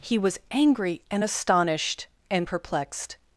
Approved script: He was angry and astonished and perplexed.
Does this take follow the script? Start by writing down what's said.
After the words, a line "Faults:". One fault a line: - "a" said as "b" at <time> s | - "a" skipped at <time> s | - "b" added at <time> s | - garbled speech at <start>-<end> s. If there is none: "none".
He was angry and astonished and perplexed.
Faults:
none